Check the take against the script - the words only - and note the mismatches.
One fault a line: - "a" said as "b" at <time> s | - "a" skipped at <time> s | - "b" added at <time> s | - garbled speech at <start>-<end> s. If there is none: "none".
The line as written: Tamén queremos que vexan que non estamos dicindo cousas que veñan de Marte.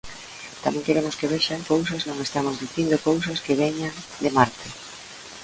- "que" said as "cousas" at 1.7 s